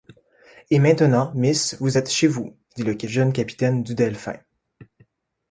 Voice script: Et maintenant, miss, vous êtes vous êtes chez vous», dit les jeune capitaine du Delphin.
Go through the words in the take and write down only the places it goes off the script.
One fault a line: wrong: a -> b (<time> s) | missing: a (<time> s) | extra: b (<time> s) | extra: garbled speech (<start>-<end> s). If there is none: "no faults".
missing: vous êtes (2.1 s)
wrong: les -> le (2.8 s)